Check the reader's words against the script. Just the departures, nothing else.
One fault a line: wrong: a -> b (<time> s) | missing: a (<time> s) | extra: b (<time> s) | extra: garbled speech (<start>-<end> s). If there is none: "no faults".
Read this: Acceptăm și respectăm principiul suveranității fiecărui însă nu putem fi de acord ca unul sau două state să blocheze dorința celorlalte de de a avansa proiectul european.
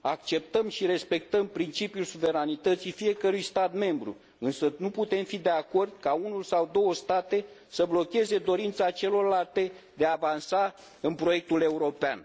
extra: stat membru (3.4 s)
missing: de (10.1 s)
extra: în (11.0 s)